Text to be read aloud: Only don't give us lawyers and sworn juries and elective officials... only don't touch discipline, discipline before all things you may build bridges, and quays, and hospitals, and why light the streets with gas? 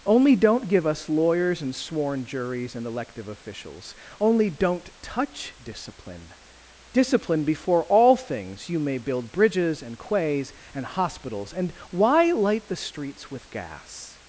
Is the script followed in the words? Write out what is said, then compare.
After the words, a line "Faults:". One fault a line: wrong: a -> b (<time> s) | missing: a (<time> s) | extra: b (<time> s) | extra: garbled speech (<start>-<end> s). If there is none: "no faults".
Only don't give us lawyers and sworn juries and elective officials... only don't touch discipline, discipline before all things you may build bridges, and quays, and hospitals, and why light the streets with gas?
Faults:
no faults